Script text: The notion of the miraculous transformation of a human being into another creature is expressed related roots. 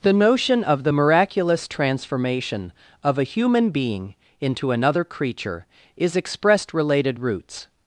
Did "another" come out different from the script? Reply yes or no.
no